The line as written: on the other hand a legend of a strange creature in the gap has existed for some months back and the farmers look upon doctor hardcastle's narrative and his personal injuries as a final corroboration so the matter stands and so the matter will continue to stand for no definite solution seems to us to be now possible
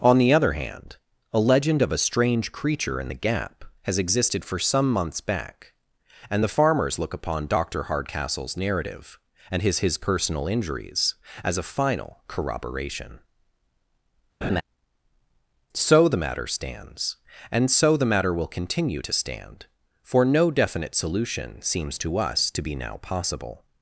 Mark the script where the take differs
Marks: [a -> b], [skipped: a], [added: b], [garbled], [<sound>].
on the other hand a legend of a strange creature in the gap has existed for some months back and the farmers look upon doctor hardcastle's narrative and his [added: his] personal injuries as a final corroboration [laugh] so the matter stands and so the matter will continue to stand for no definite solution seems to us to be now possible